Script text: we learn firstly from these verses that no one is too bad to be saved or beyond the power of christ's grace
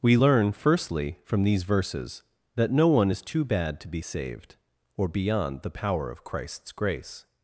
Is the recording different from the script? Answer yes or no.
no